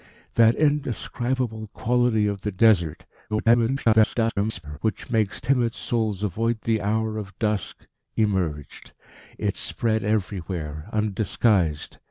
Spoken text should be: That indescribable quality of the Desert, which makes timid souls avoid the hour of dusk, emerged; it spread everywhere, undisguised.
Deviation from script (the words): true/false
true